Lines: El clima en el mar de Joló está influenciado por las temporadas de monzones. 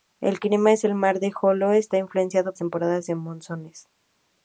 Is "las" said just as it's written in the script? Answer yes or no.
no